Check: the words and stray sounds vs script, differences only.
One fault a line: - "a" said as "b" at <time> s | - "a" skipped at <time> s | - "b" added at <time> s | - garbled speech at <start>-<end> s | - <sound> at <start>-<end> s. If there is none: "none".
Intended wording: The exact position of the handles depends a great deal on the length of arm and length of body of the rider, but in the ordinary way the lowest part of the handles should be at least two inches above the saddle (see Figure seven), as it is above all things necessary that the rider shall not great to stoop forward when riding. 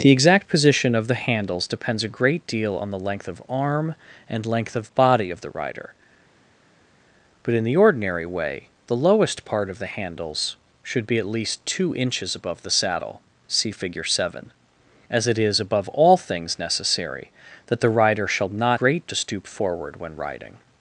none